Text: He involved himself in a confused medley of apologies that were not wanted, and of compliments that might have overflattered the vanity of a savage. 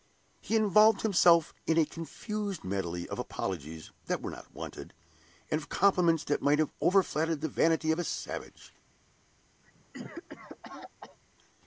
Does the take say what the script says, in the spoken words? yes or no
yes